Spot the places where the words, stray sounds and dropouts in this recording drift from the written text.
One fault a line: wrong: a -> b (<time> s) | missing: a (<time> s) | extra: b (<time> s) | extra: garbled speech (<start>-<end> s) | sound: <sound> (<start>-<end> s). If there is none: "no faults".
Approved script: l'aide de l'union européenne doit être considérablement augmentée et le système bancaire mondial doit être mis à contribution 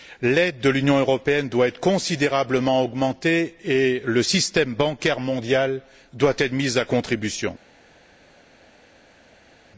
no faults